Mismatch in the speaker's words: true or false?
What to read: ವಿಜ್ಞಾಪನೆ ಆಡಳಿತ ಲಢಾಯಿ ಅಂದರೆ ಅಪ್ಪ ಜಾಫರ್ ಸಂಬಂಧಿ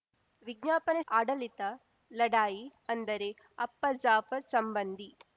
false